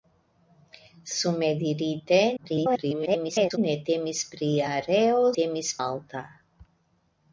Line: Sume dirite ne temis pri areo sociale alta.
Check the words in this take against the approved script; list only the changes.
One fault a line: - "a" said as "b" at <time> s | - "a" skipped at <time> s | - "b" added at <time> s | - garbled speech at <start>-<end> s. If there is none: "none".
- garbled speech at 2.4-3.6 s
- "sociale" said as "temis" at 5.4 s